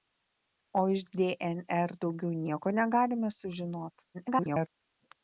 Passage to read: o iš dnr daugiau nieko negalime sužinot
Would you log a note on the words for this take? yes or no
yes